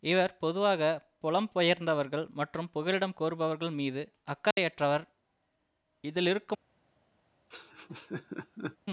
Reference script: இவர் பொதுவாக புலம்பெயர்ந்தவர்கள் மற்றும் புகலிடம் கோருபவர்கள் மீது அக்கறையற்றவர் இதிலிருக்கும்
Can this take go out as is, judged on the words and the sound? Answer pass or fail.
fail